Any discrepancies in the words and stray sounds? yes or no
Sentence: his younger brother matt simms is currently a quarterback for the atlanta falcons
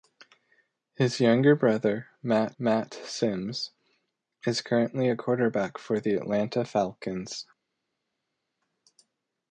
yes